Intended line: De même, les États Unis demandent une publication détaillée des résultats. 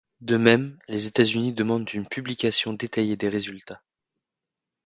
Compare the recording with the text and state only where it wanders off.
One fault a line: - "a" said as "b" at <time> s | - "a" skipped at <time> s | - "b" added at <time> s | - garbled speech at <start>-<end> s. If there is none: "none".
none